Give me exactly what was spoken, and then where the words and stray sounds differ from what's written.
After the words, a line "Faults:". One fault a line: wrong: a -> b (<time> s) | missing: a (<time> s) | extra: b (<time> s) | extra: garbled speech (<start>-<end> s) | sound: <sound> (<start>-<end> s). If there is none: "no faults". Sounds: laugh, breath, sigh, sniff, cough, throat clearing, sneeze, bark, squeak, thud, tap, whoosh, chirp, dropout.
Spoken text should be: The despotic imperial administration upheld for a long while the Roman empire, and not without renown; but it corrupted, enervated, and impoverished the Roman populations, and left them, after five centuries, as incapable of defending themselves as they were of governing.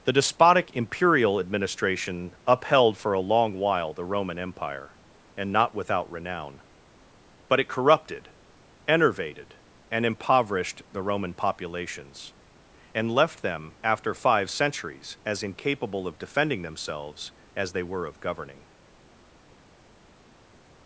The despotic imperial administration upheld for a long while the Roman empire, and not without renown; but it corrupted, enervated, and impoverished the Roman populations, and left them, after five centuries, as incapable of defending themselves as they were of governing.
Faults:
no faults